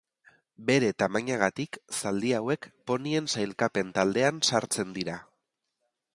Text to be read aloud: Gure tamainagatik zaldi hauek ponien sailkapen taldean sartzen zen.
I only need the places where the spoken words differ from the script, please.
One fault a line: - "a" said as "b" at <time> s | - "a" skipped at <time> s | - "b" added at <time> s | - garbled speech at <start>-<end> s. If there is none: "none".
- "Gure" said as "Bere" at 0.7 s
- "zen" said as "dira" at 5.0 s